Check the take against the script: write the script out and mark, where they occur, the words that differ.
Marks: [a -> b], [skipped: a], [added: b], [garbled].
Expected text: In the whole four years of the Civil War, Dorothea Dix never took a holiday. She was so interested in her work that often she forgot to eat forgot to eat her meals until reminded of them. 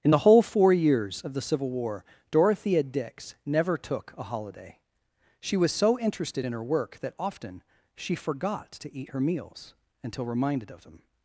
In the whole four years of the Civil War, Dorothea Dix never took a holiday. She was so interested in her work that often she forgot to eat [skipped: forgot to eat] her meals until reminded of them.